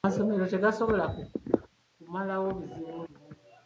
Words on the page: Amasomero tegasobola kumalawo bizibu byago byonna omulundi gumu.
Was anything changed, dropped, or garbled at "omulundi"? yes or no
yes